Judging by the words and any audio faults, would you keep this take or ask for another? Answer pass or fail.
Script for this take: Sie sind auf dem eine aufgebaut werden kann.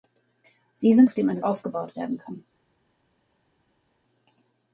pass